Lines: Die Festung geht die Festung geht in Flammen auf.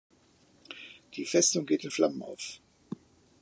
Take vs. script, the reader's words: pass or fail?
fail